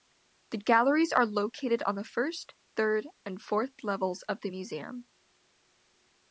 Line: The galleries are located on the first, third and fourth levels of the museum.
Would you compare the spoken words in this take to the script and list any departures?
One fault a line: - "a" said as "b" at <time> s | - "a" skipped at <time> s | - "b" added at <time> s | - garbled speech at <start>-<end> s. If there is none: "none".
none